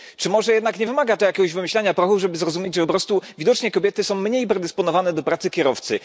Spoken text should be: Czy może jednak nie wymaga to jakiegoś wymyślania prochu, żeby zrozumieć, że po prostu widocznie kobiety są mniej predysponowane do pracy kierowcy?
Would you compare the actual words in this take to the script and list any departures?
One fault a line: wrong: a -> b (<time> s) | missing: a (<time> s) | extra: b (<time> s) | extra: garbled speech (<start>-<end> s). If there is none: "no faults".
no faults